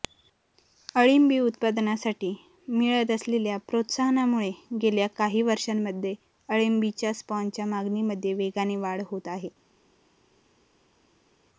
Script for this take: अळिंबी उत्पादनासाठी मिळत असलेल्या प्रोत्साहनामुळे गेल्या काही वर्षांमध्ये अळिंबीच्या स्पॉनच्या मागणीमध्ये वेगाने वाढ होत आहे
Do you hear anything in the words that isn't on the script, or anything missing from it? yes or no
no